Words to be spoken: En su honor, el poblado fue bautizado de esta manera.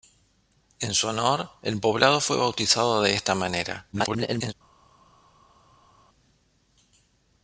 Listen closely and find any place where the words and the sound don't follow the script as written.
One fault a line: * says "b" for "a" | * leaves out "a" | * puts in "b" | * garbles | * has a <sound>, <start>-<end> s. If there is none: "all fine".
* garbles